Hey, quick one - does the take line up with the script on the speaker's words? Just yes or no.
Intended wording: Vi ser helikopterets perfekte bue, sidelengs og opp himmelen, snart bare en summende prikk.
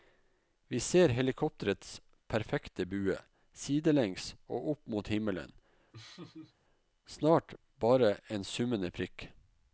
no